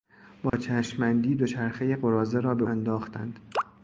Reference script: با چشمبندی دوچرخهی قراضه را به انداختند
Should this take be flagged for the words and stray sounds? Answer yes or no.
yes